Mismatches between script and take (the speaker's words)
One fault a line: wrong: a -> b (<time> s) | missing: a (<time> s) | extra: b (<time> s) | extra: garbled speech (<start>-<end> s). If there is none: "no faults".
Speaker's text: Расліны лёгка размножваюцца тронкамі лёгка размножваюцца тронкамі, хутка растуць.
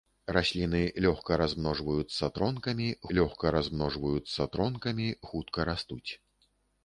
no faults